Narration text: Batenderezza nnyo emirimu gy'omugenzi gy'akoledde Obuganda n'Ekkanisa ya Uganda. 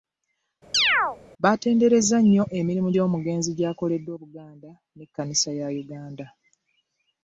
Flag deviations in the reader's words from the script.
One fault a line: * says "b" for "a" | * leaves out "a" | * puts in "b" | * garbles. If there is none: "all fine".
all fine